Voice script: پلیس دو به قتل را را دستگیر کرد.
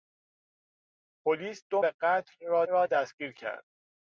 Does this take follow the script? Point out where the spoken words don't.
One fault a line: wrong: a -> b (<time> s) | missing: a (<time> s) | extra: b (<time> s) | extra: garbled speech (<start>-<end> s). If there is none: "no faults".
no faults